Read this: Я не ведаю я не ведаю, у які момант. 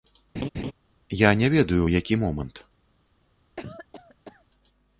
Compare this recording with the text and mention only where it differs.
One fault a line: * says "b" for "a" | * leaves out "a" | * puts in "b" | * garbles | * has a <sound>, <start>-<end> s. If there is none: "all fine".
* has a laugh, 0.3-0.7 s
* leaves out "я не ведаю"
* has a cough, 3.6-4.5 s